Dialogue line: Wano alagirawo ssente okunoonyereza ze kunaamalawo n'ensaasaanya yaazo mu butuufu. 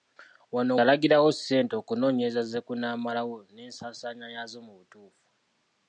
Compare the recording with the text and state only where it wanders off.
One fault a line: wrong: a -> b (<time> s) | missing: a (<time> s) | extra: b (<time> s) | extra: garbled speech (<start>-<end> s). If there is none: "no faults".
no faults